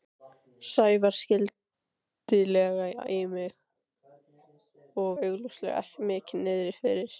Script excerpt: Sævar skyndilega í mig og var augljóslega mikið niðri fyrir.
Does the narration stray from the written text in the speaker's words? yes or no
yes